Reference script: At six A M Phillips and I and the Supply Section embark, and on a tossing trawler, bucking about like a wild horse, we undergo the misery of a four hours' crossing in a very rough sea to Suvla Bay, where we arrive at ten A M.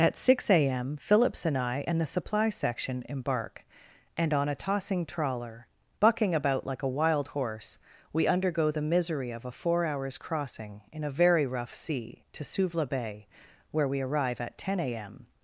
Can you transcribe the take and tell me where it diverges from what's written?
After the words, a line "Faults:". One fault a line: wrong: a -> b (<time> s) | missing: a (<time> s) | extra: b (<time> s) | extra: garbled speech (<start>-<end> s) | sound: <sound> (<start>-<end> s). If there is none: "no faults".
At six A M Phillips and I and the Supply Section embark, and on a tossing trawler, bucking about like a wild horse, we undergo the misery of a four hours' crossing in a very rough sea to Suvla Bay, where we arrive at ten A M.
Faults:
no faults